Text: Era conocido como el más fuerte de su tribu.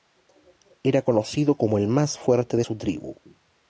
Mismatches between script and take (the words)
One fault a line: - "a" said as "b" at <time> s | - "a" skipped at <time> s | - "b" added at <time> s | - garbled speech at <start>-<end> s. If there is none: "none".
none